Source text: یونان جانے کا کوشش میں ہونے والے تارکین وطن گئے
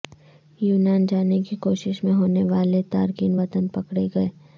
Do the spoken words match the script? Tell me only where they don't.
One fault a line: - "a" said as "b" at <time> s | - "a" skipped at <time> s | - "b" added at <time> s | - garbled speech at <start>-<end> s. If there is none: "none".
- "کا" said as "کی" at 1.4 s
- "پکڑے" added at 3.7 s